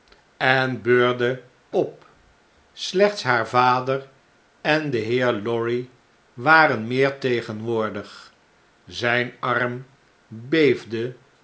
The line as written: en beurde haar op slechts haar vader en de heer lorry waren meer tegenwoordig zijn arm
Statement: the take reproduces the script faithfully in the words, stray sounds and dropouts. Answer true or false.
false